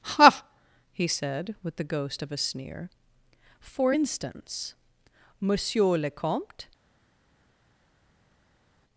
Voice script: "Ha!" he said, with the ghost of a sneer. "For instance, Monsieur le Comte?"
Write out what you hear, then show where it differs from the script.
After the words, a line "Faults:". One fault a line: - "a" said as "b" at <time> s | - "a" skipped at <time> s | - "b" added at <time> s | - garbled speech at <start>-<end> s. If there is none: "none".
"Ha!" he said, with the ghost of a sneer. "For instance, Monsieur le Comte?"
Faults:
none